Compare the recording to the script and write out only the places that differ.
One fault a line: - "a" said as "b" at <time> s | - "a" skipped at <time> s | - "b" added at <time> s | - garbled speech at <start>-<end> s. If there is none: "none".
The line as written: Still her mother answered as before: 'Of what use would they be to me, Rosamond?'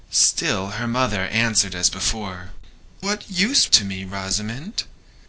- "Of" skipped at 2.5 s
- "would they be" skipped at 3.7 s